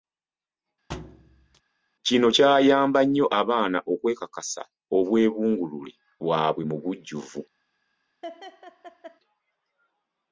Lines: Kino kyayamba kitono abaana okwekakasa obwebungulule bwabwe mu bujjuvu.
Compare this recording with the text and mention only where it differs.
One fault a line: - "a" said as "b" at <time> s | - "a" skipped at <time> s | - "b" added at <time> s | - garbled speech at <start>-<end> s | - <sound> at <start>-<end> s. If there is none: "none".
- thud at 0.9-1.6 s
- "kitono" said as "nnyo" at 3.0 s
- laugh at 8.2-9.2 s